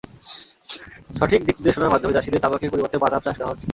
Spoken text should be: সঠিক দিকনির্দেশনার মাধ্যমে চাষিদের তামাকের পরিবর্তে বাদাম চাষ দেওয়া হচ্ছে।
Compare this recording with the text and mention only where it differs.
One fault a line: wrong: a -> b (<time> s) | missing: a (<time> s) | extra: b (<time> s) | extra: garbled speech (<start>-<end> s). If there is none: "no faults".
no faults